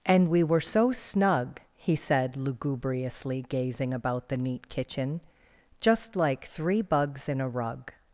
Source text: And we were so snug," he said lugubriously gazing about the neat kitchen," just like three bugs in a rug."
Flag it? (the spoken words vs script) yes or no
no